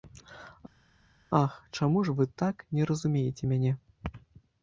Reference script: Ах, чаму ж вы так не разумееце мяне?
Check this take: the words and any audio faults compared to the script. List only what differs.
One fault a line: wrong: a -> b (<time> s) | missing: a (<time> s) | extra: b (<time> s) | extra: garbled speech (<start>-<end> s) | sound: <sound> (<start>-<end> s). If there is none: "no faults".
no faults